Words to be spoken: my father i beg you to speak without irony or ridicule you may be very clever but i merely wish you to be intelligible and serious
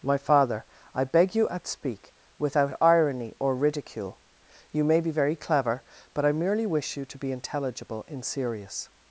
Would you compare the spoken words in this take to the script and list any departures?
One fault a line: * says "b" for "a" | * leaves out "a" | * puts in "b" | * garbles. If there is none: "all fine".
* says "at" for "to"
* says "in" for "and"